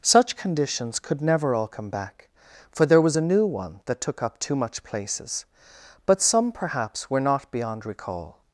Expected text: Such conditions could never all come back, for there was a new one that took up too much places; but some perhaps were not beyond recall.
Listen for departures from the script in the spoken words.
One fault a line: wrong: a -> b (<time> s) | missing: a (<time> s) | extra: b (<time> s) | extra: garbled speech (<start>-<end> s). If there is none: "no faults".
no faults